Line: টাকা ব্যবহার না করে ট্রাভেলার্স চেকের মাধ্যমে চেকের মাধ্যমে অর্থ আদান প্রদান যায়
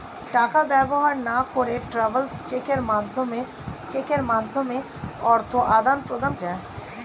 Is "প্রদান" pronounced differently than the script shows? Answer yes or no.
no